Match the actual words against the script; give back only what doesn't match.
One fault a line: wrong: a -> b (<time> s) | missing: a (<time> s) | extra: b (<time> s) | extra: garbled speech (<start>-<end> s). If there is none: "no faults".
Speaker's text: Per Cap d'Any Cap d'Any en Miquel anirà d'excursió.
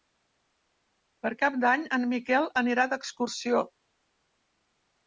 missing: Cap d'Any (1.9 s)